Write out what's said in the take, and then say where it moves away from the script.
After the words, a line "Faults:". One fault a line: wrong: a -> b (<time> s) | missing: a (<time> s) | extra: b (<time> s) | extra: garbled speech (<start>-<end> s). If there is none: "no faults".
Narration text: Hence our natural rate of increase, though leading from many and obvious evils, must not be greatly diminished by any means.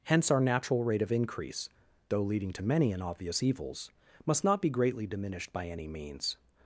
Hence our natural rate of increase, though leading to many and obvious evils, must not be greatly diminished by any means.
Faults:
wrong: from -> to (2.5 s)